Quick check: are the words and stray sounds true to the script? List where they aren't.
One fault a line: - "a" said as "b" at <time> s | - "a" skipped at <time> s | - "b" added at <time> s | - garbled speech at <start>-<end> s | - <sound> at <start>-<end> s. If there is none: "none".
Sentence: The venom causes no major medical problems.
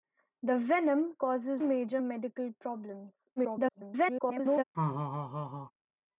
- "no" skipped at 1.6 s
- garbled speech at 3.4-4.6 s
- laugh at 4.7-5.7 s